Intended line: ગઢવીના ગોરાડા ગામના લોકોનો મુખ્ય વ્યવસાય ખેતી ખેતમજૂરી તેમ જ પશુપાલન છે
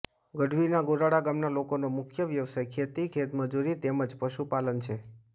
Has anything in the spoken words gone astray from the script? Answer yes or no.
no